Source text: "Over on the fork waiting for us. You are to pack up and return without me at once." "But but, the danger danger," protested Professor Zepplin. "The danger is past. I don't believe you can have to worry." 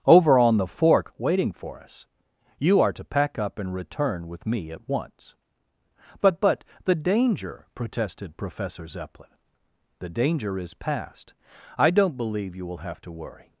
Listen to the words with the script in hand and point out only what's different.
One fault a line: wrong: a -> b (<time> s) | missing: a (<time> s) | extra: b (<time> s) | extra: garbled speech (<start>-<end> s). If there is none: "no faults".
wrong: without -> with (4.3 s)
missing: danger (7.7 s)
wrong: can -> will (12.7 s)